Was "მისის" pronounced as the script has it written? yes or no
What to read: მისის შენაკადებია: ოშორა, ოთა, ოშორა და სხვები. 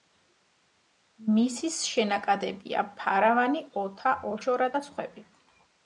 yes